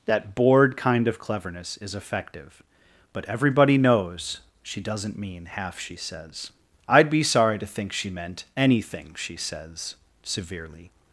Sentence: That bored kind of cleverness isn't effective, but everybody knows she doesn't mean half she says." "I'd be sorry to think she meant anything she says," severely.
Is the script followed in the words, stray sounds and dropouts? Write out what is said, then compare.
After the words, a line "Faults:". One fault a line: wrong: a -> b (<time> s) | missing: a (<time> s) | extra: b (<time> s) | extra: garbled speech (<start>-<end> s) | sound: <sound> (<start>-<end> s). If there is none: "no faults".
That bored kind of cleverness is effective, but everybody knows she doesn't mean half she says." "I'd be sorry to think she meant anything she says," severely.
Faults:
wrong: isn't -> is (1.8 s)